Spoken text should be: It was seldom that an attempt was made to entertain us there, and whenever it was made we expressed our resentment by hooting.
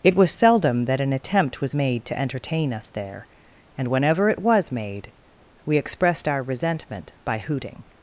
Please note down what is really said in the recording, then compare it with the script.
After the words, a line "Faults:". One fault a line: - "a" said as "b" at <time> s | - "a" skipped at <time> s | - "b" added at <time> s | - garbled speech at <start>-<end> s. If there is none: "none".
It was seldom that an attempt was made to entertain us there, and whenever it was made we expressed our resentment by hooting.
Faults:
none